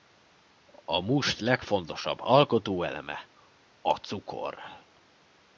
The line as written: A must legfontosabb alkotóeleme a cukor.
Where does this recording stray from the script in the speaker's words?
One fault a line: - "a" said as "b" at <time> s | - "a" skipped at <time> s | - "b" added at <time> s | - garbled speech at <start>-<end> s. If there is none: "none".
none